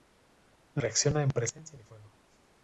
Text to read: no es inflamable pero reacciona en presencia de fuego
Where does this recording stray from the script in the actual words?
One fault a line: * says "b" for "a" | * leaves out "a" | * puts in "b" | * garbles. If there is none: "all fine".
* leaves out "es inflamable pero"